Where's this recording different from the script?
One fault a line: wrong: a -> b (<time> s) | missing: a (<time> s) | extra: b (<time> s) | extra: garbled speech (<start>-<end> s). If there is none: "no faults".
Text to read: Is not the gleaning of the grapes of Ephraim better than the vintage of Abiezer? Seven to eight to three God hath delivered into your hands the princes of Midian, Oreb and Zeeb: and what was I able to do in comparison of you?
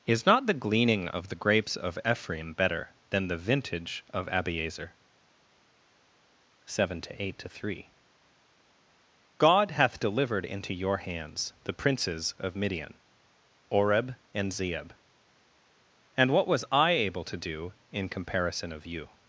no faults